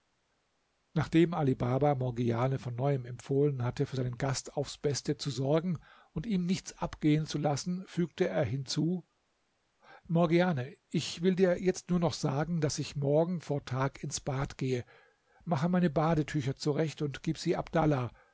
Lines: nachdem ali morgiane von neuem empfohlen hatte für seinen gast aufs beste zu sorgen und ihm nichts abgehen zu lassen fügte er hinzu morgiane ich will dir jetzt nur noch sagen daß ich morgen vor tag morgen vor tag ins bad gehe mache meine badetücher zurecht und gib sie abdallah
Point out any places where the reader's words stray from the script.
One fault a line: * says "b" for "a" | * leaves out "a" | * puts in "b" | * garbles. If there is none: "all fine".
* puts in "baba"
* leaves out "morgen vor tag"